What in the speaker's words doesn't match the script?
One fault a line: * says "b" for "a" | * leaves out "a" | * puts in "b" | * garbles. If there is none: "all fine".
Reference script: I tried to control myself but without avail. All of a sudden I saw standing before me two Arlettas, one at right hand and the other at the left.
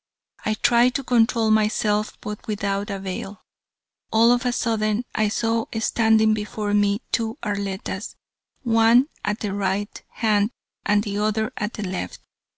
* puts in "the"